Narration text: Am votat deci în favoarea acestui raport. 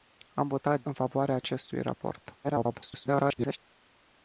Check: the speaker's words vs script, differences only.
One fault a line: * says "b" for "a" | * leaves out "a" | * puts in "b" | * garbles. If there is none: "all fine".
* leaves out "deci"
* garbles